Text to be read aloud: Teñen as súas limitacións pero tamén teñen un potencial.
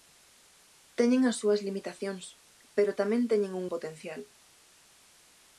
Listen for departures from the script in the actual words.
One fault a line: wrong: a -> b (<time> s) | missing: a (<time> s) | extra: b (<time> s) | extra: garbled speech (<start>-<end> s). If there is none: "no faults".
no faults